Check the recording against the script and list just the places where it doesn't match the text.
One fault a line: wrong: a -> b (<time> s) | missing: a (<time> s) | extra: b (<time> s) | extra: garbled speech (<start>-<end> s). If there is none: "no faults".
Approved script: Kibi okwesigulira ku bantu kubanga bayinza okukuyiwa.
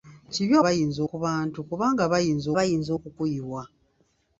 wrong: okwesigulira -> bayinza (0.6 s)
extra: bayinza (2.6 s)